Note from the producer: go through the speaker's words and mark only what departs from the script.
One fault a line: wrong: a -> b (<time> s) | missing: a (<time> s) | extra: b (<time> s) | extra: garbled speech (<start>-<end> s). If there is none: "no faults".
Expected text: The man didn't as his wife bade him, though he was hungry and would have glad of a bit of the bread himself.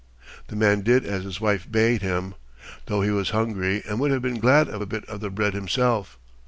wrong: didn't -> did (0.8 s)
extra: been (4.2 s)